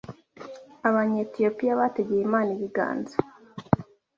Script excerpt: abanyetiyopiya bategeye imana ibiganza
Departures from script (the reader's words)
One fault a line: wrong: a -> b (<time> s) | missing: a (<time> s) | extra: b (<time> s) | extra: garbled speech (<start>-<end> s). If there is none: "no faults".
no faults